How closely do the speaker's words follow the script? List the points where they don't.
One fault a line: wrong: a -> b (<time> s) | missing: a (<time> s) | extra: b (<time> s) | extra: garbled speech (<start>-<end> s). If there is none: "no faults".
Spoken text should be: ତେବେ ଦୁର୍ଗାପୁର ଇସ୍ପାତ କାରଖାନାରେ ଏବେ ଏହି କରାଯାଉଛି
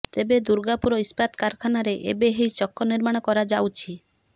extra: ଚକ ନିର୍ମାଣ (2.6 s)